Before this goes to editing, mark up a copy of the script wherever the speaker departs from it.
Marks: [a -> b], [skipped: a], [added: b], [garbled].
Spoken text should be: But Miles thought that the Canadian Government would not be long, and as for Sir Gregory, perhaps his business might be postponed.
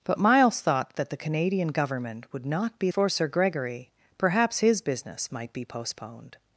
But Miles thought that the Canadian Government would not be [skipped: long, and as] for Sir Gregory, perhaps his business might be postponed.